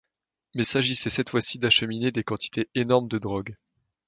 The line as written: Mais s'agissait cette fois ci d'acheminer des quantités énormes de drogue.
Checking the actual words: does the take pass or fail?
pass